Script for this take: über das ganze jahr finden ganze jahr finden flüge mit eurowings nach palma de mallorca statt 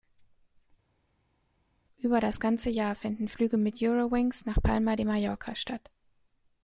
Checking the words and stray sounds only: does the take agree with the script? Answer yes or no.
no